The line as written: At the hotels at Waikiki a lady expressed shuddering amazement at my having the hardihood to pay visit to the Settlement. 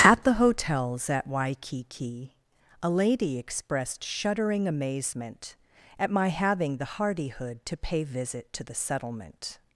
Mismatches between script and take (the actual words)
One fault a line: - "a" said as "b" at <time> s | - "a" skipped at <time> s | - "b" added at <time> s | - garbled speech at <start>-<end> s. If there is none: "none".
none